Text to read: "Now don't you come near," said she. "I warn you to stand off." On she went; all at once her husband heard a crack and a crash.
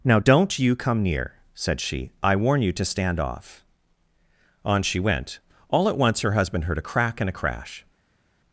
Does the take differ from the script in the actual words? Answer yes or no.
no